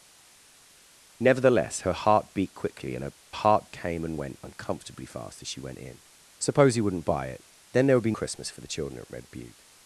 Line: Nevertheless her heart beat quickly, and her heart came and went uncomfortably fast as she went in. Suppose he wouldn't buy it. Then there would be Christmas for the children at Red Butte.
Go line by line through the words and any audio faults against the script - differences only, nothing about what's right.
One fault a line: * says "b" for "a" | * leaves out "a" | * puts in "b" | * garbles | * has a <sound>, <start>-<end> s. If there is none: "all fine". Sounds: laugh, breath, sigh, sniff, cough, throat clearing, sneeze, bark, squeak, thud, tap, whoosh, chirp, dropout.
all fine